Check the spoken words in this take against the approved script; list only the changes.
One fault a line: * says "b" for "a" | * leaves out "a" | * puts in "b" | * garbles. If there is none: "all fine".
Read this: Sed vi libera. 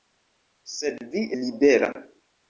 all fine